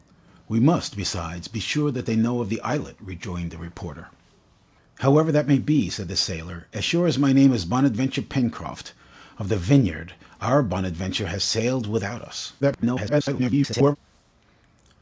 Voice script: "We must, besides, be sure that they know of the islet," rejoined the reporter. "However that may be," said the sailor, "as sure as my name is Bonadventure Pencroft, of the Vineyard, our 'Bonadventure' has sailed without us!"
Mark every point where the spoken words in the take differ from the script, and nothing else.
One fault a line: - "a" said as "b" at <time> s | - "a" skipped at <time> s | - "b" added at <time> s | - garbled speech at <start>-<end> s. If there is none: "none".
- garbled speech at 12.6-14.0 s